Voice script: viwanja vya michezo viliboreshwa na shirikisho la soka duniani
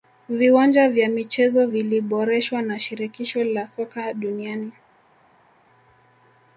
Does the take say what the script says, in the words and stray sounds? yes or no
yes